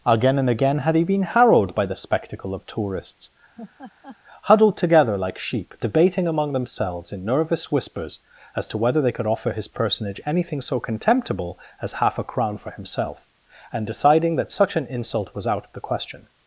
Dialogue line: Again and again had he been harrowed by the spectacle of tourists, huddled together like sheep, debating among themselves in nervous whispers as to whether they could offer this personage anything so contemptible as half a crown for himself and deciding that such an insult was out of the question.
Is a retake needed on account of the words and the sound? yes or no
yes